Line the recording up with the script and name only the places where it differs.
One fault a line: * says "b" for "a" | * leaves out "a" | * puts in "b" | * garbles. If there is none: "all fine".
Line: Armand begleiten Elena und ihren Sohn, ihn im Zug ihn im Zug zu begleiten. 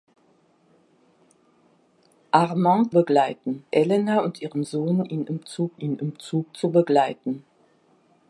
all fine